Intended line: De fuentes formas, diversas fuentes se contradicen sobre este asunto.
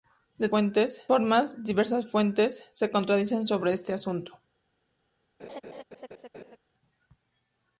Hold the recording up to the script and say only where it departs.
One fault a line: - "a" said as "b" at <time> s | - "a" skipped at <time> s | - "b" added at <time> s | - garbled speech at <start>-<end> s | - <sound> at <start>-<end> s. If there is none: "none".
- laugh at 5.4-6.6 s